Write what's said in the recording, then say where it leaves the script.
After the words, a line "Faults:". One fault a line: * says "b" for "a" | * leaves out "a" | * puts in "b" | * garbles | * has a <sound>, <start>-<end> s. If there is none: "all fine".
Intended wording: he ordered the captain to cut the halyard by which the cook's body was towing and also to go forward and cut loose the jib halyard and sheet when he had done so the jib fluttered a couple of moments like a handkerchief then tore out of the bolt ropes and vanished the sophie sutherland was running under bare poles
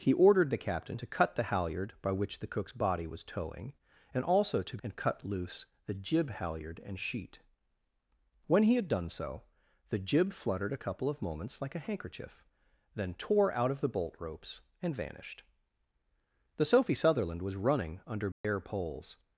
he ordered the captain to cut the halyard by which the cook's body was towing and also to and cut loose the jib halyard and sheet when he had done so the jib fluttered a couple of moments like a handkerchief then tore out of the bolt ropes and vanished the sophie sutherland was running under bare poles
Faults:
* leaves out "go forward"
* has a dropout, 18.3-18.4 s